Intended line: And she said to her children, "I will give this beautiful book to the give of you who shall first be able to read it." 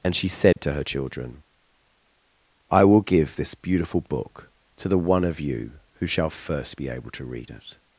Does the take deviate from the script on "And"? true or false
false